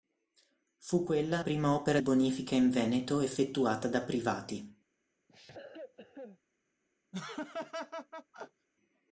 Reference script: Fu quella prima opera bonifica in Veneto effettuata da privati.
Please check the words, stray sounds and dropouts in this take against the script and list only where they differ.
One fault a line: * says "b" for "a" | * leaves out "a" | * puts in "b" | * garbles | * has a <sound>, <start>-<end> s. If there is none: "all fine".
* has a cough, 5.3-6.4 s
* has a laugh, 7.1-8.7 s